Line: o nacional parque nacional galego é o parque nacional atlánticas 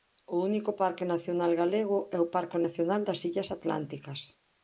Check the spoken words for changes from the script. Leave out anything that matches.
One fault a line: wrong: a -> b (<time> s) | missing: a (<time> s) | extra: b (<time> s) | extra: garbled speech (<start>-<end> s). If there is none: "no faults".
wrong: nacional -> único (0.5 s)
extra: das illas (3.1 s)